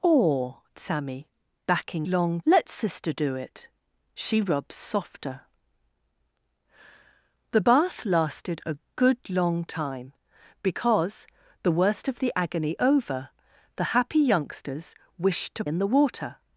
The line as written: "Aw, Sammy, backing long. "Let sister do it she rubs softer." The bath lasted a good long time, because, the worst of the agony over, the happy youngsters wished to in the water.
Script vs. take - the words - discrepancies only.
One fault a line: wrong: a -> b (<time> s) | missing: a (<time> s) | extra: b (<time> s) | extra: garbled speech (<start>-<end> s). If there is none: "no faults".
no faults